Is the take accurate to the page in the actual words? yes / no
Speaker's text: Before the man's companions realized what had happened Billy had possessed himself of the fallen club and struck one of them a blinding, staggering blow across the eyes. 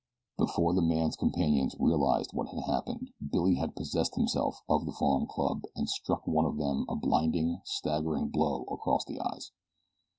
yes